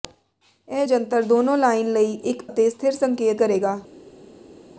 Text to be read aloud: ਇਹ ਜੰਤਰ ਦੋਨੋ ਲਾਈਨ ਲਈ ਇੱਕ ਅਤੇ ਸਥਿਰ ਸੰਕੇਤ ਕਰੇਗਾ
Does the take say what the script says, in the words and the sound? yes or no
yes